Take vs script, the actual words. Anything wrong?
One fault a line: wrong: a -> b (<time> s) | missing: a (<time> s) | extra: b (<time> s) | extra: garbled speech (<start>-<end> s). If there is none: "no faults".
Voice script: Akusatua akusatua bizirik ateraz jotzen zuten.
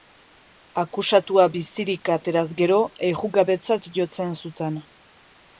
missing: akusatua (1.4 s)
extra: gero errugabetzat (2.6 s)